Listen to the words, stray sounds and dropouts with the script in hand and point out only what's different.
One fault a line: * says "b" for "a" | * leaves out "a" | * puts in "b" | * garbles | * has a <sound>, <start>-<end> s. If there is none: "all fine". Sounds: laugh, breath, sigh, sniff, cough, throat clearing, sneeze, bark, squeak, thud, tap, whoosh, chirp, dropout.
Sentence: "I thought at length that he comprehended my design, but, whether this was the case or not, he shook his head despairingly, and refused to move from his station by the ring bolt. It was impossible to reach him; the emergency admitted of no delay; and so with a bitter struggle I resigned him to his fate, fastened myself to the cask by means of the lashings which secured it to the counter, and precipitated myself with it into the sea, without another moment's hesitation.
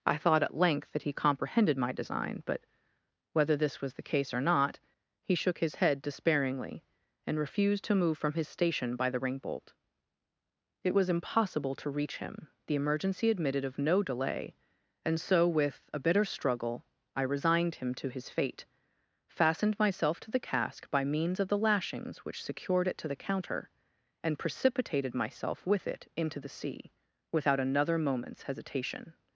all fine